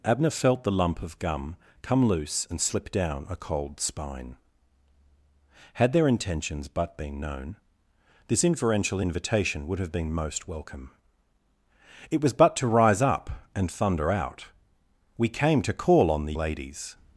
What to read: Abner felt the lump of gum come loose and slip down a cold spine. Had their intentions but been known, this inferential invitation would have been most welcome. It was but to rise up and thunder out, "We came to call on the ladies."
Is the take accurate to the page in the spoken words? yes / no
yes